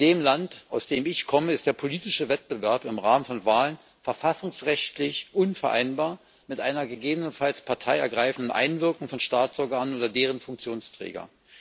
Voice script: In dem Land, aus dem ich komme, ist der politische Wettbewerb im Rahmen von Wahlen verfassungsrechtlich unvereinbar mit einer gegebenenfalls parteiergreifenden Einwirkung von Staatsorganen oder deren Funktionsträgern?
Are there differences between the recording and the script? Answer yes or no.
no